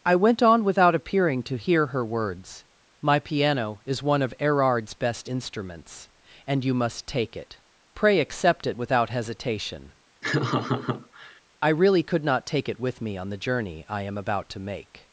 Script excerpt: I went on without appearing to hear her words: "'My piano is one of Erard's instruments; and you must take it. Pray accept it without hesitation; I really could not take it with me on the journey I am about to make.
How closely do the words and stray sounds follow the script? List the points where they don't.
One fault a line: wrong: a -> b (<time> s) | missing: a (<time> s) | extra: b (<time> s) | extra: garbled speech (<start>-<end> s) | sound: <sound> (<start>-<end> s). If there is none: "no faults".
extra: best (5.0 s)
sound: laugh (10.2-11.4 s)